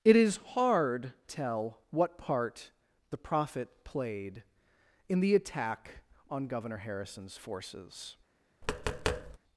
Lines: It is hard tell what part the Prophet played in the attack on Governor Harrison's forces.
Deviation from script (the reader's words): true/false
false